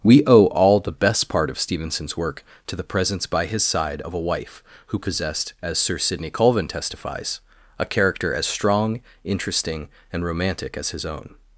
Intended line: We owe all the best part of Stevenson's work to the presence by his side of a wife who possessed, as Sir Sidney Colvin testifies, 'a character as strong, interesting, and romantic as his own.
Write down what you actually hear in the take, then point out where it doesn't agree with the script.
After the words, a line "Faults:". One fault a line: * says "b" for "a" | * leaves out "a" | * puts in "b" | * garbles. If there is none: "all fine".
We owe all the best part of Stevenson's work to the presence by his side of a wife who possessed, as Sir Sidney Colvin testifies, 'a character as strong, interesting, and romantic as his own.
Faults:
all fine